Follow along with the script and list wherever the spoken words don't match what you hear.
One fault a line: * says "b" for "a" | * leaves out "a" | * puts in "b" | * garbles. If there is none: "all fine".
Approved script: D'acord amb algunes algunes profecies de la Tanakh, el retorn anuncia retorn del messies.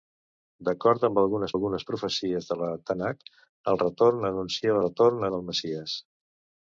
all fine